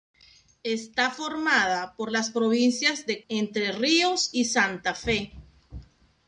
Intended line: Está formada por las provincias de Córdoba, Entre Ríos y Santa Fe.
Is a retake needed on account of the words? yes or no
yes